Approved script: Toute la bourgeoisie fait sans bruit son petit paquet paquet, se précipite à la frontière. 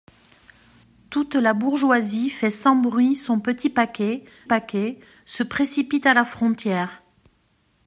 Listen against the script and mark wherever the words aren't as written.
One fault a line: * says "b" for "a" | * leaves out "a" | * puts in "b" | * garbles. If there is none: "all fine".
all fine